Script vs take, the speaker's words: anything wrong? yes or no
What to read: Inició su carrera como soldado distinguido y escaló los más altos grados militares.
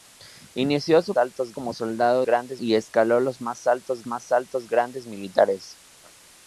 yes